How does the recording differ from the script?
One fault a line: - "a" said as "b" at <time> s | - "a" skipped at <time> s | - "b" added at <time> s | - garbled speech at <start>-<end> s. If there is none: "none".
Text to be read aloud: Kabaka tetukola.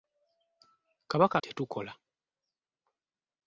none